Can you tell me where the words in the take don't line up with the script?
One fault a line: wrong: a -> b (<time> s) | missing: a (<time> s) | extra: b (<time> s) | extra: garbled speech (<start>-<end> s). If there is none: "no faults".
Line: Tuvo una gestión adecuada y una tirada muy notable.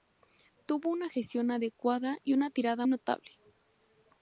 missing: muy (2.9 s)